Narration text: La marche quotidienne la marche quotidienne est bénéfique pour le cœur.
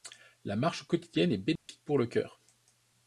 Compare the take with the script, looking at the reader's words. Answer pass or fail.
fail